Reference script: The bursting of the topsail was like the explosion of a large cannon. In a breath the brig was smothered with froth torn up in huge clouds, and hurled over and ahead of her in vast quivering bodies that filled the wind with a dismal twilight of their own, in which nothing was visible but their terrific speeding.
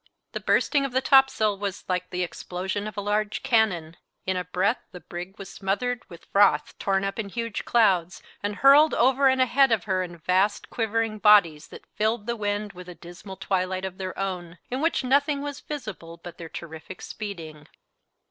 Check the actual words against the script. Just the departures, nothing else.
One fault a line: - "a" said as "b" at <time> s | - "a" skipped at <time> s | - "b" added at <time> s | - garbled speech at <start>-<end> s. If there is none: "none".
none